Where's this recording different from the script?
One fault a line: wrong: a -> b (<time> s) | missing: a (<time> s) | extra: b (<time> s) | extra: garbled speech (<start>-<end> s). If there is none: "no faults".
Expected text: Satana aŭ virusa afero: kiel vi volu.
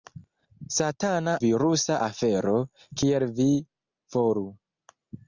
missing: aŭ (1.4 s)